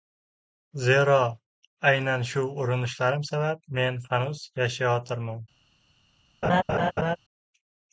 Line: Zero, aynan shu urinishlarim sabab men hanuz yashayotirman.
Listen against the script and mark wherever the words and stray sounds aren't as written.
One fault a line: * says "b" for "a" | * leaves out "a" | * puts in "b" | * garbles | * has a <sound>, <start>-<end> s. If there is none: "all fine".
* has a laugh, 6.4-7.2 s